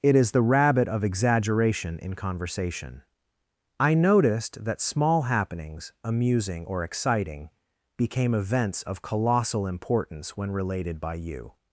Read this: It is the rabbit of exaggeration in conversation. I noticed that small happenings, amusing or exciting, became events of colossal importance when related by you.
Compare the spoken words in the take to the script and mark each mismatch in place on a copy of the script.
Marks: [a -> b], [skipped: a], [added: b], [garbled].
It is the rabbit of exaggeration in conversation. I noticed that small happenings, amusing or exciting, became events of colossal importance when related by you.